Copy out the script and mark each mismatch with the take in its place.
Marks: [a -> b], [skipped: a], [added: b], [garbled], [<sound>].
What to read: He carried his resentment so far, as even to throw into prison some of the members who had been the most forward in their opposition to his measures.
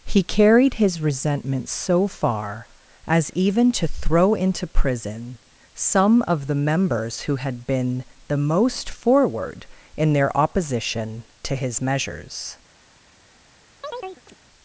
He carried his resentment so far, as even to throw into prison some of the members who had been the most forward in their opposition to his measures. [chirp]